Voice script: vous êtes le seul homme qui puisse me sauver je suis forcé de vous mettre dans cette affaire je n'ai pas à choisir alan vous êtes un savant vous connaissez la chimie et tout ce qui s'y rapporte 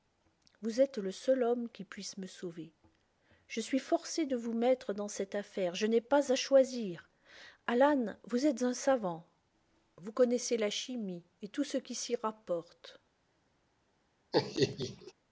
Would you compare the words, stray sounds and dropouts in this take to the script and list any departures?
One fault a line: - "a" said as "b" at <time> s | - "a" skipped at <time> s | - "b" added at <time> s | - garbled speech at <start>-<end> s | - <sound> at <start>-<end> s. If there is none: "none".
- laugh at 14.3-15.1 s